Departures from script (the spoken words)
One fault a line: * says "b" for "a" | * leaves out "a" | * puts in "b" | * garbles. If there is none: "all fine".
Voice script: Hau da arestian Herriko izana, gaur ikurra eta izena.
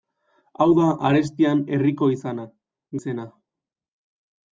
* leaves out "gaur ikurra eta"